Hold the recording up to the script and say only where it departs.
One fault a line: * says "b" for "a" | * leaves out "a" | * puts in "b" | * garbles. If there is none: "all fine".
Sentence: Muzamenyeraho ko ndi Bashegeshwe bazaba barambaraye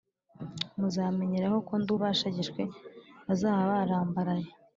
all fine